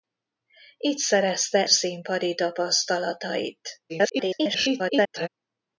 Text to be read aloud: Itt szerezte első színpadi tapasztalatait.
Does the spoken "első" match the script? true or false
false